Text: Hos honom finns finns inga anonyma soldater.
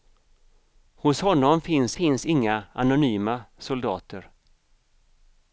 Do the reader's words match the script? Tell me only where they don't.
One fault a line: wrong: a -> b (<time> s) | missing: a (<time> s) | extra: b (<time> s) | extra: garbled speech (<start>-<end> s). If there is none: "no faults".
no faults